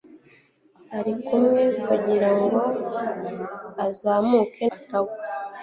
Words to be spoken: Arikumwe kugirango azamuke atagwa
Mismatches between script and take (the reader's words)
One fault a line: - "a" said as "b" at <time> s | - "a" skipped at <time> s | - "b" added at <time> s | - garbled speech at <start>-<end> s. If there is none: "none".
none